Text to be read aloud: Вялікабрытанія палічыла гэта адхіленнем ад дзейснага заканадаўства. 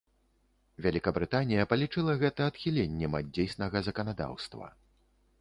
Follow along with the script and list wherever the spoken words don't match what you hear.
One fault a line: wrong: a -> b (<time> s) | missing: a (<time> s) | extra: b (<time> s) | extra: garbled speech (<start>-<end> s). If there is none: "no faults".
no faults